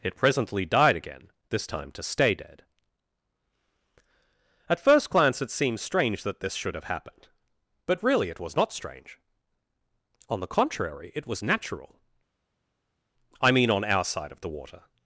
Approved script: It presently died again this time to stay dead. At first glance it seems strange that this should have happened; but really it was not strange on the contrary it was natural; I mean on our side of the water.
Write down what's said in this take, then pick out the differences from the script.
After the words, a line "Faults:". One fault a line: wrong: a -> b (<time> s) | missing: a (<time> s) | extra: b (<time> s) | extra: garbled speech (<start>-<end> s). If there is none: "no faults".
It presently died again this time to stay dead. At first glance it seems strange that this should have happened; but really it was not strange on the contrary it was natural; I mean on our side of the water.
Faults:
no faults